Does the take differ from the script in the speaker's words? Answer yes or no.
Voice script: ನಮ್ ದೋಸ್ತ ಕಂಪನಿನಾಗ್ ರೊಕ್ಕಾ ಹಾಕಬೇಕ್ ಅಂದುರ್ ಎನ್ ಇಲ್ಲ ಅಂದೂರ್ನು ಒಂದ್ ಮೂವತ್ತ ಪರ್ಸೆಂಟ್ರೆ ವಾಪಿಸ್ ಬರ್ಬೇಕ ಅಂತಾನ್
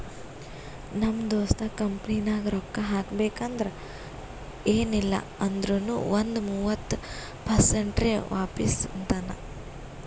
yes